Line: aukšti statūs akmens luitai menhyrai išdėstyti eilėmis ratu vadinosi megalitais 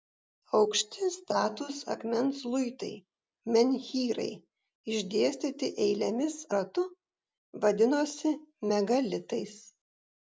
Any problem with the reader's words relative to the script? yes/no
no